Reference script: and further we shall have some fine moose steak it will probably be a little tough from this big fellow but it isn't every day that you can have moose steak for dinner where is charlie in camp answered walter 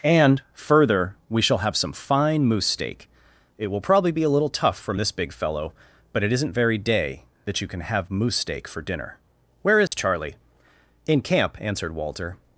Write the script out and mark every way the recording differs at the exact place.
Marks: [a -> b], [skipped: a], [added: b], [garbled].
and further we shall have some fine moose steak it will probably be a little tough from this big fellow but it isn't [every -> very] day that you can have moose steak for dinner where is charlie in camp answered walter